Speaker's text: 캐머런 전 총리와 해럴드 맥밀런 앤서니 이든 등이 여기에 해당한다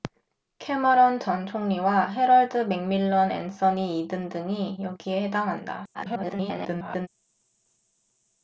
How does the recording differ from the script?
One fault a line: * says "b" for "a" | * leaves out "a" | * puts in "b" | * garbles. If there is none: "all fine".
* garbles